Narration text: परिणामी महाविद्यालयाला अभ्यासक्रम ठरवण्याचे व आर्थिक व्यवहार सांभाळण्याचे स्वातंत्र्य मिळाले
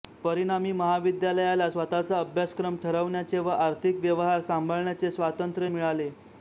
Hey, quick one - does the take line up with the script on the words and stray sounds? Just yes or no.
no